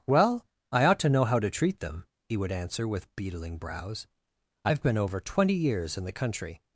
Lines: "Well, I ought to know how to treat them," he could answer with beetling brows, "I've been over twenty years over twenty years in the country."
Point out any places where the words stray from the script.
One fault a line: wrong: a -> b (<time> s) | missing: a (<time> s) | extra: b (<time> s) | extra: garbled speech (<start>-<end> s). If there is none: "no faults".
wrong: could -> would (2.4 s)
missing: over twenty years (6.0 s)